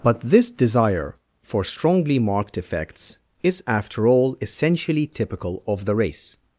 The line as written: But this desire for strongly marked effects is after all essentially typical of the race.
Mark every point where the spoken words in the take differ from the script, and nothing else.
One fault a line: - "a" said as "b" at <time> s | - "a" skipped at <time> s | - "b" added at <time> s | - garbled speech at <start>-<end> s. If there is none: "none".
none